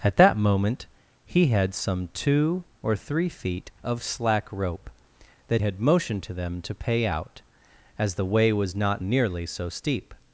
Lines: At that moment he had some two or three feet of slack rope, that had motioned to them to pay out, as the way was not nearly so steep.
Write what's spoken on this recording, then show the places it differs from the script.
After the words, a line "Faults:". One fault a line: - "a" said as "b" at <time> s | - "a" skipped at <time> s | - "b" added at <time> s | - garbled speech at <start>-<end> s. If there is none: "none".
At that moment he had some two or three feet of slack rope, that had motioned to them to pay out, as the way was not nearly so steep.
Faults:
none